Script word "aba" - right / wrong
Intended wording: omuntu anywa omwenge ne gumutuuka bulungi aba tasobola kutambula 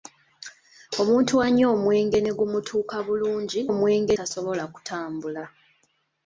wrong